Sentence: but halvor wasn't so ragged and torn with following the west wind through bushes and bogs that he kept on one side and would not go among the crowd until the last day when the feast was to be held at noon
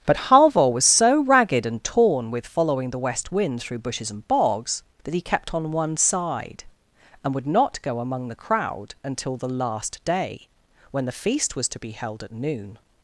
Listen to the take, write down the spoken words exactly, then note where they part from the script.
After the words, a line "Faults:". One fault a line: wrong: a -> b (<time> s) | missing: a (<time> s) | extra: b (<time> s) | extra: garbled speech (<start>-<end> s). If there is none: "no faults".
but halvor was so ragged and torn with following the west wind through bushes and bogs that he kept on one side and would not go among the crowd until the last day when the feast was to be held at noon
Faults:
wrong: wasn't -> was (0.7 s)